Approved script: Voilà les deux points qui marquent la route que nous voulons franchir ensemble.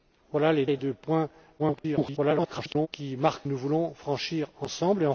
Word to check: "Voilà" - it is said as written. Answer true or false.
true